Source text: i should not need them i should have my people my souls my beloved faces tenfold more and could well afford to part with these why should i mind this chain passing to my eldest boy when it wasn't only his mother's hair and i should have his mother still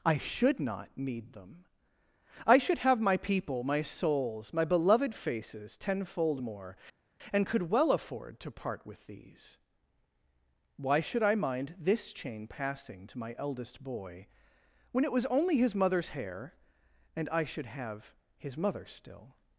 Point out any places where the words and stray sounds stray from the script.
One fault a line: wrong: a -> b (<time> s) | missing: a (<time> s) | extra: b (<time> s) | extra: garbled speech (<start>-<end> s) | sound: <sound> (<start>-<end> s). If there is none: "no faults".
wrong: wasn't -> was (15.1 s)